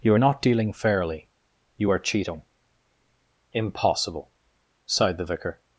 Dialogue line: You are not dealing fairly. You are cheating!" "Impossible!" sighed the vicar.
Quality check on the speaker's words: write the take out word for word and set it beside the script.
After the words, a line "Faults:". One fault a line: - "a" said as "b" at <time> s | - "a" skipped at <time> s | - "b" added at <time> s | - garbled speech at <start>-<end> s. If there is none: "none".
You are not dealing fairly. You are cheating!" "Impossible!" sighed the vicar.
Faults:
none